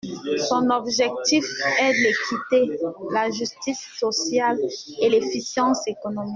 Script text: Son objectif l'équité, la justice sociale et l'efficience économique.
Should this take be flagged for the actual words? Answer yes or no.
yes